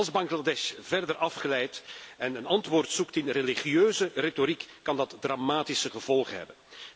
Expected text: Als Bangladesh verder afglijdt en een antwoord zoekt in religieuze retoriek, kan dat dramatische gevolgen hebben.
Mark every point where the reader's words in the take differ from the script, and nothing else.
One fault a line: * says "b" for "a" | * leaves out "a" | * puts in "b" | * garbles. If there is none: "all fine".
all fine